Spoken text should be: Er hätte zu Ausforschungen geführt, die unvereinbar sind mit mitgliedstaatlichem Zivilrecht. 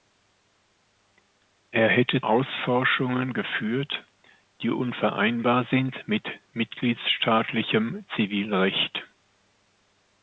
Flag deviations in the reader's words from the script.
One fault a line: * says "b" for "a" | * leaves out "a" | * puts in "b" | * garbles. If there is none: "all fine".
* leaves out "zu"